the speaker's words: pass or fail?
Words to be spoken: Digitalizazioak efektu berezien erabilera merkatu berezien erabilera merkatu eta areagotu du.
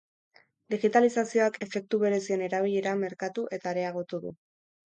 fail